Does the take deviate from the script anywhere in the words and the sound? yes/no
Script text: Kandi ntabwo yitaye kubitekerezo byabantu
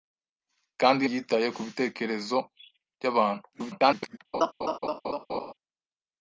yes